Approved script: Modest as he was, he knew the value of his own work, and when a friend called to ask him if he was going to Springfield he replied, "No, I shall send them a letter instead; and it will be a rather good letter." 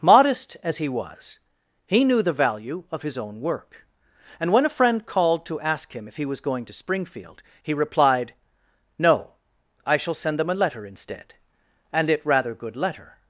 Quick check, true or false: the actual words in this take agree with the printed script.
false